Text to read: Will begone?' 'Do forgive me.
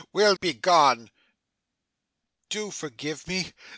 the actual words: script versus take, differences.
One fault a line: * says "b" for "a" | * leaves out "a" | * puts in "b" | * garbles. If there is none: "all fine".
all fine